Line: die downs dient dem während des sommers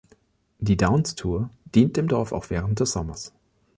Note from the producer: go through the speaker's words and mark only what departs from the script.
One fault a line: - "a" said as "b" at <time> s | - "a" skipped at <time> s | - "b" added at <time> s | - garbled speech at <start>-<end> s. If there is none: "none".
- "tour" added at 1.1 s
- "dorf auch" added at 2.1 s